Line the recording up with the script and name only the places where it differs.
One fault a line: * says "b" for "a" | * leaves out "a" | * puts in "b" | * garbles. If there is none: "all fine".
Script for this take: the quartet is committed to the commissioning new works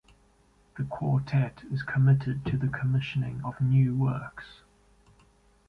* puts in "of"